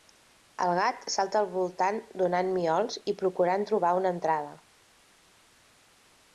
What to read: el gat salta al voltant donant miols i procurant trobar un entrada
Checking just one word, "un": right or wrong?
wrong